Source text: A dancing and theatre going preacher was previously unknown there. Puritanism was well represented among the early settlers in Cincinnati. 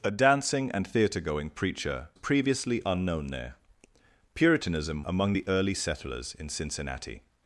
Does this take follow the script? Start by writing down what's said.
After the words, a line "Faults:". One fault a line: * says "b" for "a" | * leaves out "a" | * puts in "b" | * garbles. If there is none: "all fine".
A dancing and theatre going preacher previously unknown there. Puritanism among the early settlers in Cincinnati.
Faults:
* leaves out "was"
* leaves out "was well represented"